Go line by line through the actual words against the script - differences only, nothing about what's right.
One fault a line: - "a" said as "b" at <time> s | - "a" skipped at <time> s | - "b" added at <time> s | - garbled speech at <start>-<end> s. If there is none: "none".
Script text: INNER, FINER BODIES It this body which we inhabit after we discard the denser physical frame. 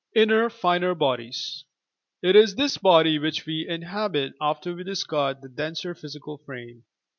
- "is" added at 2.4 s